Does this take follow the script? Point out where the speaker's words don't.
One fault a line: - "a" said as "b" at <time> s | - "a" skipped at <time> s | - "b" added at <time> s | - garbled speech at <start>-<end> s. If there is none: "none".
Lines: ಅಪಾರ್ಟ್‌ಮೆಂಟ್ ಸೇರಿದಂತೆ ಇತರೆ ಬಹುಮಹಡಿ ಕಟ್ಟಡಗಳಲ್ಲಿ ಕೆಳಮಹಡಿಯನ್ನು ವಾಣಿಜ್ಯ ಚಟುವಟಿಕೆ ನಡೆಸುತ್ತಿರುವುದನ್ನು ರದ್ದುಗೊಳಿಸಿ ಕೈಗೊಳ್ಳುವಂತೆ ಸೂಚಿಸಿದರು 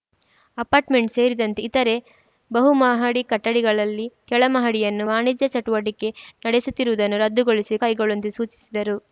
none